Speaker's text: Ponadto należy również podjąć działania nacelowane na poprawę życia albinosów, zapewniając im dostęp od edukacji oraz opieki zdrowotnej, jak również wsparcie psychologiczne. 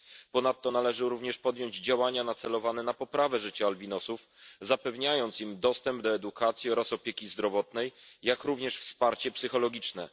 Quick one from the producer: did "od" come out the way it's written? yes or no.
no